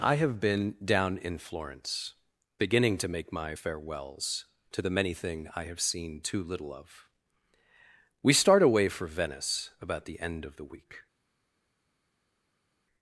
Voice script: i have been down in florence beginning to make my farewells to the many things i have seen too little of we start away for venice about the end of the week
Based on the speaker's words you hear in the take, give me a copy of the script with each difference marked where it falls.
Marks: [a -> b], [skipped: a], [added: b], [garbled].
i have been down in florence beginning to make my farewells to the many [things -> thing] i have seen too little of we start away for venice about the end of the week